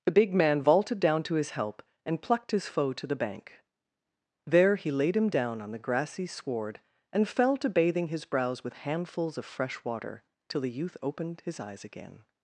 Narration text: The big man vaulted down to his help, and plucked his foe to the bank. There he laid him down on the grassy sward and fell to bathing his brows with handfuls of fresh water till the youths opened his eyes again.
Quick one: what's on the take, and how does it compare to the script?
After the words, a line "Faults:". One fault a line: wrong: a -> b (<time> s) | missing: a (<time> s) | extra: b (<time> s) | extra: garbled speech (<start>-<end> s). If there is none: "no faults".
The big man vaulted down to his help, and plucked his foe to the bank. There he laid him down on the grassy sward and fell to bathing his brows with handfuls of fresh water till the youth opened his eyes again.
Faults:
wrong: youths -> youth (10.7 s)